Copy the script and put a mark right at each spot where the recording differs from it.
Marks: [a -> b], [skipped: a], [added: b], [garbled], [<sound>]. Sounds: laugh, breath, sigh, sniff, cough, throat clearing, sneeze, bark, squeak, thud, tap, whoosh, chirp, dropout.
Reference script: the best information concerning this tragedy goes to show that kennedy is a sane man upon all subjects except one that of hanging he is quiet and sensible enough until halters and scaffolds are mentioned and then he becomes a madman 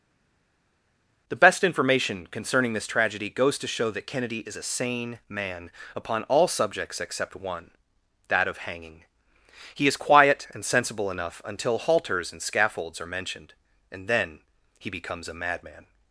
the best information concerning this tragedy goes to show that kennedy is a sane man upon all subjects except one that of hanging he is quiet and sensible enough until halters and scaffolds are mentioned and then he becomes a madman